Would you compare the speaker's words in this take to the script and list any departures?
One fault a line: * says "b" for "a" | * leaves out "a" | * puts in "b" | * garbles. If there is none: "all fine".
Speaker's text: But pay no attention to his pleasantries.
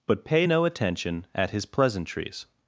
* says "at" for "to"